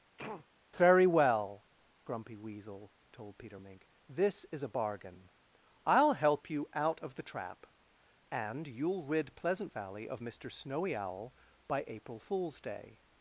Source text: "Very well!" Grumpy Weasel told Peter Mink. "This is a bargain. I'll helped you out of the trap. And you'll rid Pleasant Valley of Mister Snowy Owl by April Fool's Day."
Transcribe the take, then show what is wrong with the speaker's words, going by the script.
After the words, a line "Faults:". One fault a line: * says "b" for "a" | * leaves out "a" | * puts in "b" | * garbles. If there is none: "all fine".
"Very well!" Grumpy Weasel told Peter Mink. "This is a bargain. I'll help you out of the trap. And you'll rid Pleasant Valley of Mister Snowy Owl by April Fool's Day."
Faults:
* says "help" for "helped"